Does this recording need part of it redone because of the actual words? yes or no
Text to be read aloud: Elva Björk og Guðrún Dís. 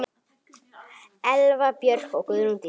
no